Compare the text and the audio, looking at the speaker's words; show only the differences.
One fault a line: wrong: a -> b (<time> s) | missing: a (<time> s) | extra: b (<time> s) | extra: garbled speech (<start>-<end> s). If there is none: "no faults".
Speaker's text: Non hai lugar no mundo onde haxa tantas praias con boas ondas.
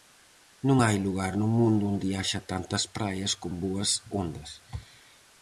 no faults